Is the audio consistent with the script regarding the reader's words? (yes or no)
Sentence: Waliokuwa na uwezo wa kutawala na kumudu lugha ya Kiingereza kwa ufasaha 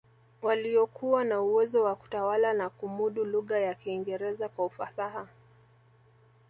yes